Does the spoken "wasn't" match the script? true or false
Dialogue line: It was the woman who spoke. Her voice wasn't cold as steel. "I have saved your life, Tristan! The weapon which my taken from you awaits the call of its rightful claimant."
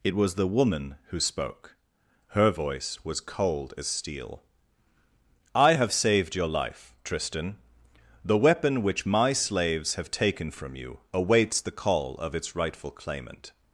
false